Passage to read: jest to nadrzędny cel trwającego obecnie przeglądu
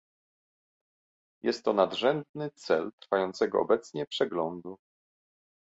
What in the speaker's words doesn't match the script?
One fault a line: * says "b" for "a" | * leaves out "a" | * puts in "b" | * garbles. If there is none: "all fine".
all fine